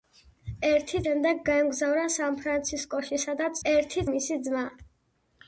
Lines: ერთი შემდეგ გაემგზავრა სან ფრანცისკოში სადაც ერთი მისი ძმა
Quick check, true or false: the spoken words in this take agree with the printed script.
true